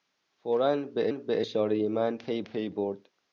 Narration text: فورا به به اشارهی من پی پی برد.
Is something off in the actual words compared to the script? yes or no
no